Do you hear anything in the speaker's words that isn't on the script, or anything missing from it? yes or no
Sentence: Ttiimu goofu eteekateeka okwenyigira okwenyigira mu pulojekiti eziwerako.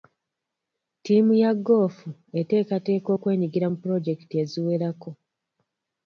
yes